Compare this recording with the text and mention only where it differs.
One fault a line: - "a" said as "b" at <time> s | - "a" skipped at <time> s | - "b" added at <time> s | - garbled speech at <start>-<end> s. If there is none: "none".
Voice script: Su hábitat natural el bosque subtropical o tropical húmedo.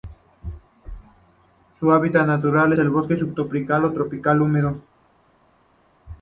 none